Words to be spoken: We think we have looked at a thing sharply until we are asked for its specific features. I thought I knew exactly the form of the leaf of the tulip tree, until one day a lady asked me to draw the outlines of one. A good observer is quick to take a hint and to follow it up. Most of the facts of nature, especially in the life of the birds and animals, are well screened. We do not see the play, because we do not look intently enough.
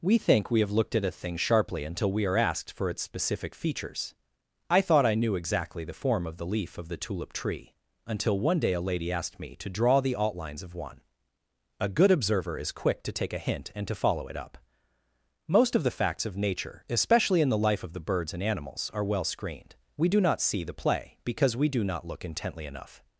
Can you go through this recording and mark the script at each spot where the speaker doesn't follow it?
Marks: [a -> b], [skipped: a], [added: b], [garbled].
We think we have looked at a thing sharply until we are asked for its specific features. I thought I knew exactly the form of the leaf of the tulip tree, until one day a lady asked me to draw the outlines of one. A good observer is quick to take a hint and to follow it up. Most of the facts of nature, especially in the life of the birds and animals, are well screened. We do not see the play, because we do not look intently enough.